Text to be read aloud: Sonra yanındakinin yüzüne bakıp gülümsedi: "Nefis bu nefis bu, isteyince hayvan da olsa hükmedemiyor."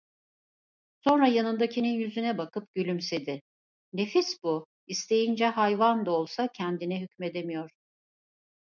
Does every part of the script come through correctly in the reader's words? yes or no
no